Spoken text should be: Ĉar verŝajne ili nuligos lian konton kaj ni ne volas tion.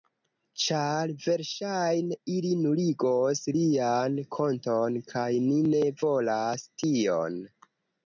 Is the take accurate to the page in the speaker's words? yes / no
yes